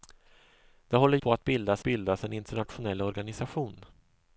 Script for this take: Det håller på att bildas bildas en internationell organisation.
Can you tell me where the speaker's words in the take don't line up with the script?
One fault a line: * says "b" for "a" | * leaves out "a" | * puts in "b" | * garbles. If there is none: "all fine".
all fine